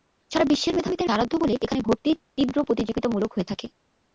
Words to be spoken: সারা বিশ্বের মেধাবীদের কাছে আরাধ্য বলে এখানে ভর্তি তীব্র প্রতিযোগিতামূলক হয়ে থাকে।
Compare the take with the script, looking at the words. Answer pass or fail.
fail